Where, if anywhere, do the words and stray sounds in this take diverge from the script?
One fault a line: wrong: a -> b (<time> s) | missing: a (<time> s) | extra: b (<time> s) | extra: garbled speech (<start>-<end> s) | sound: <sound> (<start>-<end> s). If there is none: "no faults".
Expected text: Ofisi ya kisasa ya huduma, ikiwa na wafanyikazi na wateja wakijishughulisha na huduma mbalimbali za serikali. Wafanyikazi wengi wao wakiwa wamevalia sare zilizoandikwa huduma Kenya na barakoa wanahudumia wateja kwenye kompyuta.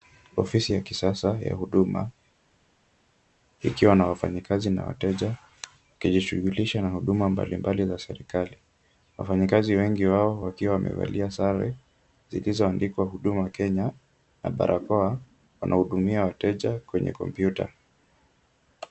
no faults